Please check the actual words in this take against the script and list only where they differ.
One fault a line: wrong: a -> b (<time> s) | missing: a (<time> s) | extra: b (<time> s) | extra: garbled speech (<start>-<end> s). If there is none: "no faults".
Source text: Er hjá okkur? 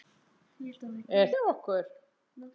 no faults